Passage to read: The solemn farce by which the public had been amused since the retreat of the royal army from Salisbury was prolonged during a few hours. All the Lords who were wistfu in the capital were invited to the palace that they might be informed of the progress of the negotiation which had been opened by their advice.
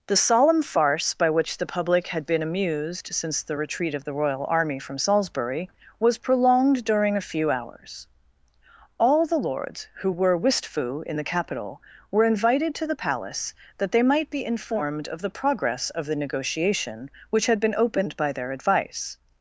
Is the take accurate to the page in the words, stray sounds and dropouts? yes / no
yes